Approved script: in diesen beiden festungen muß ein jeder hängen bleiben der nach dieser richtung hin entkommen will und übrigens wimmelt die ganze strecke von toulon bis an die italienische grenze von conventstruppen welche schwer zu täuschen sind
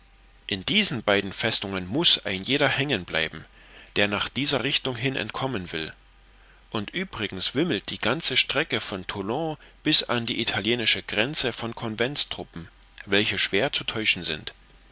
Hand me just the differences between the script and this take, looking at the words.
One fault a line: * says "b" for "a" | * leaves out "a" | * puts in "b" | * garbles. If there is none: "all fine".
all fine